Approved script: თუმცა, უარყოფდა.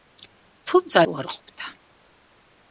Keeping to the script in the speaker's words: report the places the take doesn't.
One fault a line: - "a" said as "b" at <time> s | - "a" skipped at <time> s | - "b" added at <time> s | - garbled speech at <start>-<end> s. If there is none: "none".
none